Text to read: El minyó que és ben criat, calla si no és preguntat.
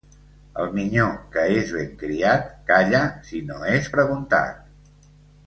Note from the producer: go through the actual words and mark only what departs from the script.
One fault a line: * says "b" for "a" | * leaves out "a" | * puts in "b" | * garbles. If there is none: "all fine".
all fine